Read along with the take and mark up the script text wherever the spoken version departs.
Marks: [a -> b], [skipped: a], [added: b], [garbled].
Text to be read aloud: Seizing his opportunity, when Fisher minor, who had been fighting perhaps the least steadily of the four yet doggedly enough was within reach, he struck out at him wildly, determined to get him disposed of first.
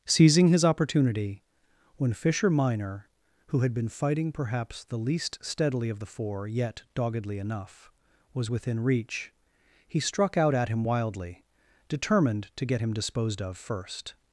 Seizing his opportunity, when Fisher minor, who had been fighting perhaps the least steadily of the four yet doggedly enough was within reach, he struck out at him wildly, determined to get him disposed of first.